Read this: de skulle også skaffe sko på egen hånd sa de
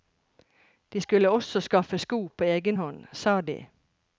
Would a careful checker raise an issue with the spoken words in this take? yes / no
no